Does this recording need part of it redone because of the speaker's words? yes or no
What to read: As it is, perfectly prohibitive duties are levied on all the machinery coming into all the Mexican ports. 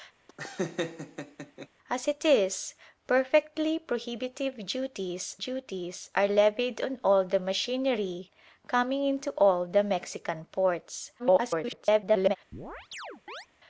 yes